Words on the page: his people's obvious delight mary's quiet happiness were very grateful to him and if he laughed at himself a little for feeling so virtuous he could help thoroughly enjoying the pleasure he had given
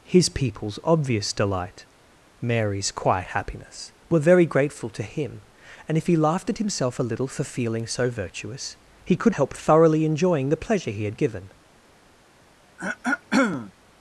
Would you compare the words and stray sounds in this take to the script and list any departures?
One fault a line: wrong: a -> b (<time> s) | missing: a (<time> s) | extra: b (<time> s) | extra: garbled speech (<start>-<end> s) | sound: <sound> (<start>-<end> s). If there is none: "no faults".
sound: throat clearing (12.8-13.7 s)